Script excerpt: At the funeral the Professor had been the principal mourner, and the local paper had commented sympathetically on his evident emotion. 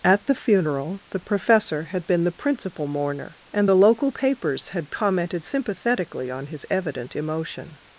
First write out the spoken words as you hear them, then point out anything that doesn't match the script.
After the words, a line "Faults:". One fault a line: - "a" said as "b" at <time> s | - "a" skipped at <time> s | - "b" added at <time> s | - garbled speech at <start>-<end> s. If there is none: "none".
At the funeral the Professor had been the principal mourner, and the local papers had commented sympathetically on his evident emotion.
Faults:
- "paper" said as "papers" at 4.1 s